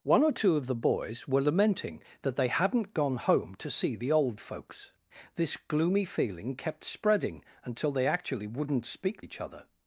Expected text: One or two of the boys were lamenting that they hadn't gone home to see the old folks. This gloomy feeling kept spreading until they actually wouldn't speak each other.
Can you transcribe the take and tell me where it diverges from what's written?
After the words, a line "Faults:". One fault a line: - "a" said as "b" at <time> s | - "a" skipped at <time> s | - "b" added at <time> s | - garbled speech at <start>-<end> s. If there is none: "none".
One or two of the boys were lamenting that they hadn't gone home to see the old folks. This gloomy feeling kept spreading until they actually wouldn't speak each other.
Faults:
none